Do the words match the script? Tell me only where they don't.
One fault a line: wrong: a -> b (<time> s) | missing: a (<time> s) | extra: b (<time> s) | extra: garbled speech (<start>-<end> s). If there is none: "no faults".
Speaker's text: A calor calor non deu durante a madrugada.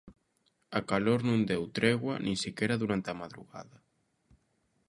missing: calor (1.2 s)
extra: tregua nin sequera (1.8 s)